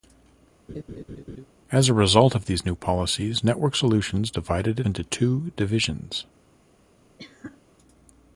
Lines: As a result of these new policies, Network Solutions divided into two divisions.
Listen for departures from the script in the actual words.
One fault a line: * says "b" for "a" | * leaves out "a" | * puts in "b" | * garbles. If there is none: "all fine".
all fine